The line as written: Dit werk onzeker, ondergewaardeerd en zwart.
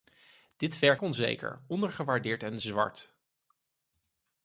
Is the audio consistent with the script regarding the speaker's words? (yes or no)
yes